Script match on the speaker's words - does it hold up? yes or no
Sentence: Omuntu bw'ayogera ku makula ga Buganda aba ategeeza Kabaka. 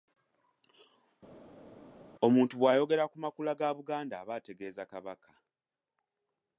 yes